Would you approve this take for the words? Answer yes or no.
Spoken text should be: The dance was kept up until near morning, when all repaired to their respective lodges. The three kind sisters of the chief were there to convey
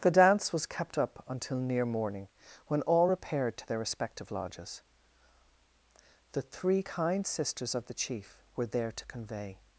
yes